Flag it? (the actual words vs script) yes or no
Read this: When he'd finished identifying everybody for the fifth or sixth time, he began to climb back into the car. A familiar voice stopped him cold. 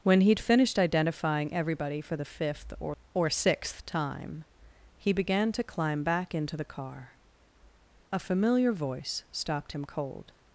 yes